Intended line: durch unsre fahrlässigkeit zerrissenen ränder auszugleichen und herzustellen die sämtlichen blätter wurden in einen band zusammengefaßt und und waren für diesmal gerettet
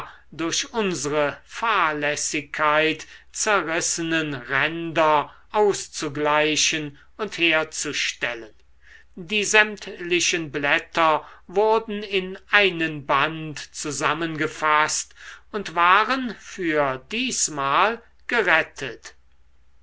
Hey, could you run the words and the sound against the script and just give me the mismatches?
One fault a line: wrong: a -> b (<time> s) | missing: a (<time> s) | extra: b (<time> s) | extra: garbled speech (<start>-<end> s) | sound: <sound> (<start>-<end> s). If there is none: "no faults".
missing: und (15.7 s)